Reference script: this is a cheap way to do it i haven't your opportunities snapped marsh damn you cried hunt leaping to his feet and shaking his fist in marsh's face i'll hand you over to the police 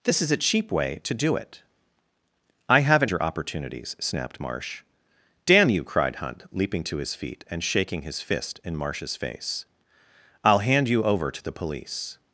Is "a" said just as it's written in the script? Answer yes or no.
yes